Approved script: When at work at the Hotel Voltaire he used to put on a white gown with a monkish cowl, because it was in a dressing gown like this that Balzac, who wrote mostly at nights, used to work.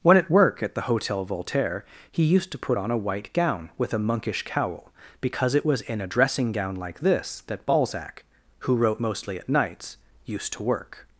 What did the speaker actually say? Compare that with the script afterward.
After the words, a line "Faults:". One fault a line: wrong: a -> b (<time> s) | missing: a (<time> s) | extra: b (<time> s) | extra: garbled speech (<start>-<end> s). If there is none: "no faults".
When at work at the Hotel Voltaire he used to put on a white gown with a monkish cowl, because it was in a dressing gown like this that Balzac, who wrote mostly at nights, used to work.
Faults:
no faults